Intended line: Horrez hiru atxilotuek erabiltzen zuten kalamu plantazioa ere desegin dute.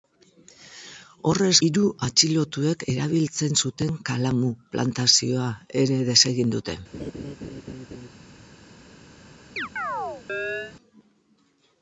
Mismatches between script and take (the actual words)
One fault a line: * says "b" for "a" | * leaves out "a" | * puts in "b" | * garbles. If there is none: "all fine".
all fine